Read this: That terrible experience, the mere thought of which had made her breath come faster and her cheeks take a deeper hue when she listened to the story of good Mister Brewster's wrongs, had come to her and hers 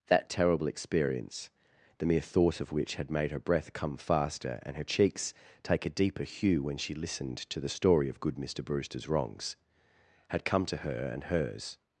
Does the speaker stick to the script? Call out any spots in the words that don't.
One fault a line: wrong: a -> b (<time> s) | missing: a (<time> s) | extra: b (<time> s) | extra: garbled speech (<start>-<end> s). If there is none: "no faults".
no faults